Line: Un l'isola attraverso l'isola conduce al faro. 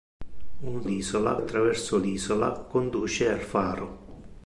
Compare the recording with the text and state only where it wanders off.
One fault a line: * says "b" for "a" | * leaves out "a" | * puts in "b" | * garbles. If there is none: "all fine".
all fine